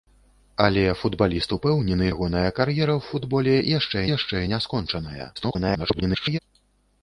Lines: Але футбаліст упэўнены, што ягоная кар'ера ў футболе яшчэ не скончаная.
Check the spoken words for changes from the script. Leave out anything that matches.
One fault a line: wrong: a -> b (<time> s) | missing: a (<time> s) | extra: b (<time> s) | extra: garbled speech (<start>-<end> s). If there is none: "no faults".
missing: што (2.1 s)
extra: яшчэ (4.2 s)
extra: garbled speech (5.4-6.4 s)